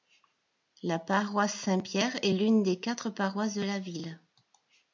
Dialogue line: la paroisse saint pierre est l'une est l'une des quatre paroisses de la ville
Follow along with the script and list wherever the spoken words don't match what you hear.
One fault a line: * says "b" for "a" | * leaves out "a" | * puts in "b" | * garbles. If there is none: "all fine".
* leaves out "est l'une"